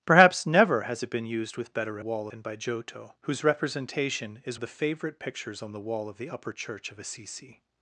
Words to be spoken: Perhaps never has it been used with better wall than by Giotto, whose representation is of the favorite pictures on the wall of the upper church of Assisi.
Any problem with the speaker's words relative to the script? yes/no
no